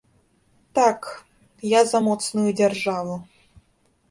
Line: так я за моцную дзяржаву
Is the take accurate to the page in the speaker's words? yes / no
yes